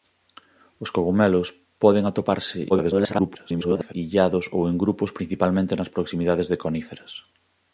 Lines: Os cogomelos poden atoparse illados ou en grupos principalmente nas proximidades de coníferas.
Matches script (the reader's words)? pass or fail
fail